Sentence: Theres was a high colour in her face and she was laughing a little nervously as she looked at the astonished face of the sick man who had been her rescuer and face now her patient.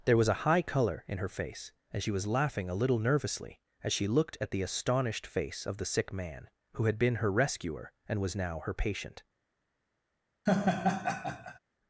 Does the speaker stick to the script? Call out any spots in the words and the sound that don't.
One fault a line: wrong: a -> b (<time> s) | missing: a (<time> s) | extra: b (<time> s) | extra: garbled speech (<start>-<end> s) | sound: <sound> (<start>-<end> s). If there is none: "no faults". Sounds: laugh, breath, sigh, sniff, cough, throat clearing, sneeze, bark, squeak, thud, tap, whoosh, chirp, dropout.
wrong: Theres -> There (0.1 s)
wrong: face -> was (8.2 s)
sound: laugh (10.5-11.6 s)